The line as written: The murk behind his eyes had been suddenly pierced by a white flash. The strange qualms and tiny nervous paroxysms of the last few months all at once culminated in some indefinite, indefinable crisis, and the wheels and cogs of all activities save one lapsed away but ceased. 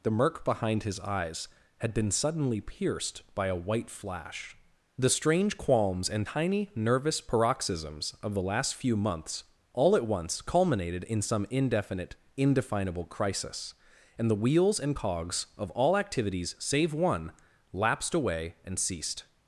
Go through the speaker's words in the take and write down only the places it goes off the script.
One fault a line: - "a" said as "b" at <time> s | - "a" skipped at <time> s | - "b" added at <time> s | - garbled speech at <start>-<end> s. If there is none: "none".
- "but" said as "and" at 18.6 s